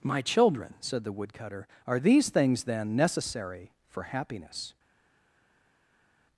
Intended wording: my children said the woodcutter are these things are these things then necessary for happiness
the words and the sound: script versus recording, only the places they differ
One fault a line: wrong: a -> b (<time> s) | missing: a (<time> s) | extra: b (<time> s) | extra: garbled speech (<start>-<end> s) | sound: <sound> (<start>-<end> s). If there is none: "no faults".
missing: are these things (2.6 s)